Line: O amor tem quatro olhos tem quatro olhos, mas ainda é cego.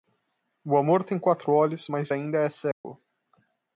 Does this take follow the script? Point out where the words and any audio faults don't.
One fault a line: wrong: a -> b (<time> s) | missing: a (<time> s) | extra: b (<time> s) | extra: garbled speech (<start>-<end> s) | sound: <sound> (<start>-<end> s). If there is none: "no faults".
missing: tem quatro olhos (1.9 s)
sound: dropout (2.7-2.8 s)